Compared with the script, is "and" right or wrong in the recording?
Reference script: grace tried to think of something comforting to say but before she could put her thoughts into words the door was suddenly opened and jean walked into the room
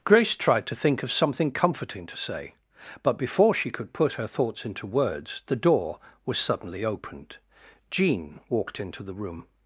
wrong